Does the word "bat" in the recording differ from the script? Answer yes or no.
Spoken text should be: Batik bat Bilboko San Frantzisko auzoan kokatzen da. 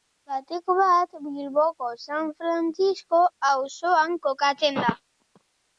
no